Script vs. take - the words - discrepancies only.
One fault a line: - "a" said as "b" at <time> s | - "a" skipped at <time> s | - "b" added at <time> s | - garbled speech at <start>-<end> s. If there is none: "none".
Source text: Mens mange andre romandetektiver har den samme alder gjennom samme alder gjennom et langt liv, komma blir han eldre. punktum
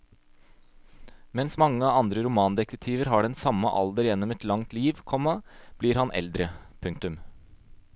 - "samme alder gjennom" skipped at 4.3 s